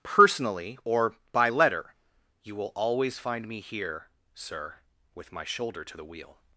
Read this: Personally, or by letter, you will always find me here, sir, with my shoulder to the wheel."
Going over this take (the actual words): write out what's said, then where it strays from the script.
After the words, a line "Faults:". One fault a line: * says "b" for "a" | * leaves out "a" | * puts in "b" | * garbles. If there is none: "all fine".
Personally, or by letter, you will always find me here, sir, with my shoulder to the wheel."
Faults:
all fine